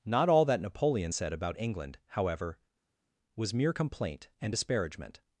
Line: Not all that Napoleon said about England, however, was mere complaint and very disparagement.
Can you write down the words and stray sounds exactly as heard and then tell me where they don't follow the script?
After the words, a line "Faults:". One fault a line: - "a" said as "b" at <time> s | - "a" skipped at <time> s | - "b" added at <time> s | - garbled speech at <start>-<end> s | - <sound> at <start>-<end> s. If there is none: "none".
Not all that Napoleon said about England, however, was mere complaint and disparagement.
Faults:
- "very" skipped at 4.5 s